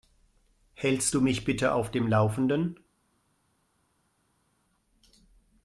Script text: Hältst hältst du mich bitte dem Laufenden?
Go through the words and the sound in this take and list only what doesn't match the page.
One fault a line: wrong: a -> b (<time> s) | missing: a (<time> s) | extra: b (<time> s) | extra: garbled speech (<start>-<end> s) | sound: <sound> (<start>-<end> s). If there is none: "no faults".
missing: hältst (1.1 s)
extra: auf (1.7 s)